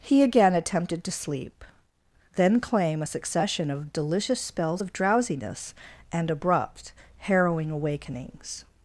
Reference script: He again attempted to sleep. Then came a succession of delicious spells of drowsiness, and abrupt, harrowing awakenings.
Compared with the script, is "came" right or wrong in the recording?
wrong